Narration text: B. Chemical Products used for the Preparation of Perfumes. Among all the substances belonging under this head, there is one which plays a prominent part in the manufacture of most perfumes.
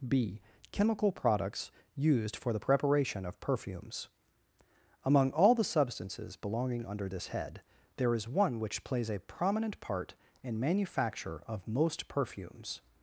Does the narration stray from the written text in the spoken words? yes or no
yes